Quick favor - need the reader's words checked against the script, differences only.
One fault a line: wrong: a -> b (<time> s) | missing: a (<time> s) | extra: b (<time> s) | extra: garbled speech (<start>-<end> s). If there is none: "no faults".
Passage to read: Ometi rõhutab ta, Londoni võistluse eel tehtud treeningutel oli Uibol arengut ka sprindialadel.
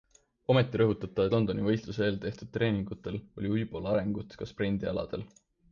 no faults